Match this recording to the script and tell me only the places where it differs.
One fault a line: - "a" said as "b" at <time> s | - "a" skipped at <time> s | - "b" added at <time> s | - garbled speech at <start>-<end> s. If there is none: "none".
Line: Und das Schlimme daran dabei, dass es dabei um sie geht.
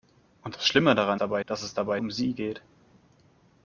none